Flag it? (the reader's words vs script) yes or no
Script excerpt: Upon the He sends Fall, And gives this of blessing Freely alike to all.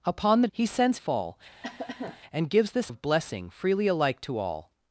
no